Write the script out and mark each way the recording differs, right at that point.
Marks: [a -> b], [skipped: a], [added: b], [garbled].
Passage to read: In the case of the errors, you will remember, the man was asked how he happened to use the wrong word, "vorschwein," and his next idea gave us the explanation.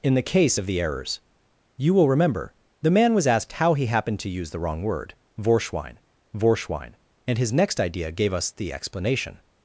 In the case of the errors, you will remember, the man was asked how he happened to use the wrong word, "vorschwein," [added: vorschwein] and his next idea gave us the explanation.